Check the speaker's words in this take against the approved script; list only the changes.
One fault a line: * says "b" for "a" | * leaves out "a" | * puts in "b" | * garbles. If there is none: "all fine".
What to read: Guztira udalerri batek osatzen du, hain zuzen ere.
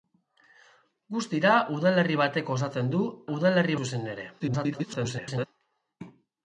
* says "udalerri" for "hain"
* garbles